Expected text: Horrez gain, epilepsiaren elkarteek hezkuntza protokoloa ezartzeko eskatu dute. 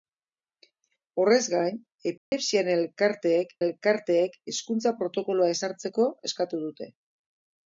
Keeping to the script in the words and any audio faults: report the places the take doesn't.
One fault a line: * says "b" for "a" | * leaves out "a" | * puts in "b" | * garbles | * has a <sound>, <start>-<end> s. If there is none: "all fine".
* has a dropout, 2.2-2.3 s
* puts in "elkarteek"